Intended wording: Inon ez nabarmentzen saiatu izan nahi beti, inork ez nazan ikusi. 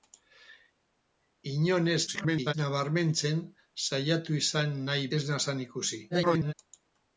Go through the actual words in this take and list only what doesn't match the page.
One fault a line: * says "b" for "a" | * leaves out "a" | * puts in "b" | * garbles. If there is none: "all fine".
* garbles
* leaves out "beti inork"
* garbles